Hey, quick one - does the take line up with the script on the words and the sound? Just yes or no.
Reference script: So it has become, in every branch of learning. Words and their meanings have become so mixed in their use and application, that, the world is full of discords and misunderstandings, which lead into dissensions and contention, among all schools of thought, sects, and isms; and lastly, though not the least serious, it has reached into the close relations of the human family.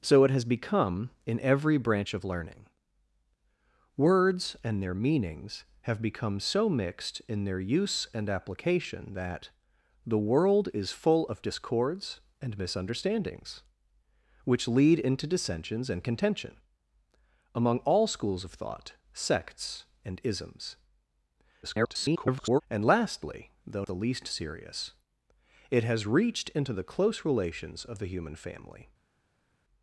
no